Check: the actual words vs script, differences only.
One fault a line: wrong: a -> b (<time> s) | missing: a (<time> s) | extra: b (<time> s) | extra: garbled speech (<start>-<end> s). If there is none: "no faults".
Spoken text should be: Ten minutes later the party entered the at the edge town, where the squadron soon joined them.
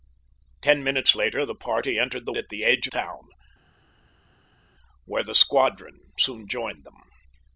no faults